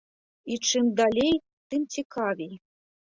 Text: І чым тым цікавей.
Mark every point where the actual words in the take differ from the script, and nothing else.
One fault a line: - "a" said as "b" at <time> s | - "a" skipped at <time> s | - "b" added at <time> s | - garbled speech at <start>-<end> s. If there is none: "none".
- "далей" added at 1.0 s